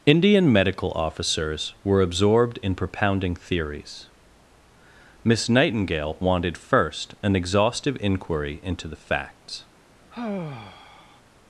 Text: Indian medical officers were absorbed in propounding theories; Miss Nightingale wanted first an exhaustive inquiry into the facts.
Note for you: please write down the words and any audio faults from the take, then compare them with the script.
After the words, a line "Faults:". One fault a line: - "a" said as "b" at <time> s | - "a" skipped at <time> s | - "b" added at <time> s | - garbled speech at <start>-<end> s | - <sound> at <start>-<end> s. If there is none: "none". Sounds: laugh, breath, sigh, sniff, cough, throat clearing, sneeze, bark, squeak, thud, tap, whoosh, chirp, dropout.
Indian medical officers were absorbed in propounding theories; Miss Nightingale wanted first an exhaustive inquiry into the facts.
Faults:
- sigh at 10.1-11.2 s